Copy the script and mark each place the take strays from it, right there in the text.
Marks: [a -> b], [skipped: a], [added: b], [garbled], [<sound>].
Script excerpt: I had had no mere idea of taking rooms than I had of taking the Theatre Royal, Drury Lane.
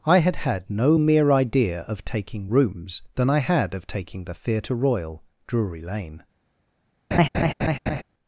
I had had no mere idea of taking rooms than I had of taking the Theatre Royal, Drury Lane. [laugh]